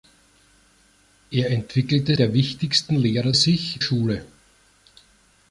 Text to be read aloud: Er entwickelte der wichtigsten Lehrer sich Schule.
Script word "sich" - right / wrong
right